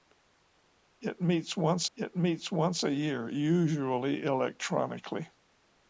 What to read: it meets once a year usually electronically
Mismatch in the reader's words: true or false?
true